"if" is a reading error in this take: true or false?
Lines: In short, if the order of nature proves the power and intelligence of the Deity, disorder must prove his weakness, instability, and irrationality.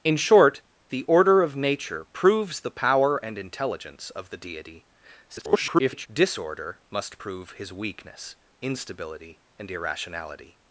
true